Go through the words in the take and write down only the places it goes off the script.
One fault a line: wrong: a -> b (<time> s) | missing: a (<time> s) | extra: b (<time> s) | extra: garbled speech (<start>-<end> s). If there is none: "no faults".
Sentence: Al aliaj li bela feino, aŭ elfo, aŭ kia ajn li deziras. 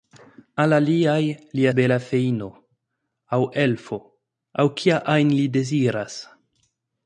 no faults